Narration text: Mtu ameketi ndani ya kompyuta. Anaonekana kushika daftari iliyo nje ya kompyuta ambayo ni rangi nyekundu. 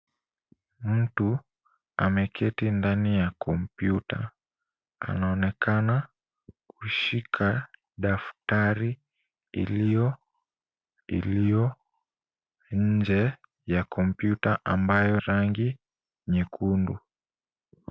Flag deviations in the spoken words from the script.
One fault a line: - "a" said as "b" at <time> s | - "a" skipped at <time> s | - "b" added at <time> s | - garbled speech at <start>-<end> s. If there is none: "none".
- "iliyo" added at 11.1 s
- "ni" skipped at 15.2 s